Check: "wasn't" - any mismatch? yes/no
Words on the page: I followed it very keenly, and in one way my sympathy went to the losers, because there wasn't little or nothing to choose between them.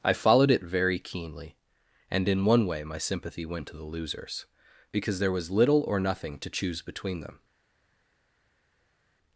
yes